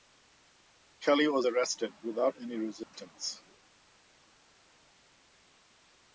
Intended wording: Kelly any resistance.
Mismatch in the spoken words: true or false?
true